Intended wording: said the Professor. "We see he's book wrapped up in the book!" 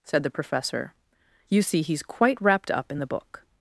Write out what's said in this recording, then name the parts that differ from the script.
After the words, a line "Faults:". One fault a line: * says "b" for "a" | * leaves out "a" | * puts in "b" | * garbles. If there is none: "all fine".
said the Professor. "You see he's quite wrapped up in the book!"
Faults:
* says "You" for "We"
* says "quite" for "book"